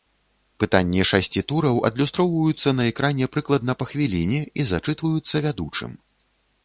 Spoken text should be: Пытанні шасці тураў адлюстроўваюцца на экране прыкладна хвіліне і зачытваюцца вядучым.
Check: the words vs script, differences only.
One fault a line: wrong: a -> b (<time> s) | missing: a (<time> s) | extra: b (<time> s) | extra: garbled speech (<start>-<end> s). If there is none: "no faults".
extra: па (3.8 s)